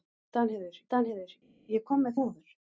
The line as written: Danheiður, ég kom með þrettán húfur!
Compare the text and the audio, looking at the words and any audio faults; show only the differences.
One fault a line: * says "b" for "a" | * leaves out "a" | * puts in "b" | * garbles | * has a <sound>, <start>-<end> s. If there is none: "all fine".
* puts in "danheiður"
* leaves out "þrettán"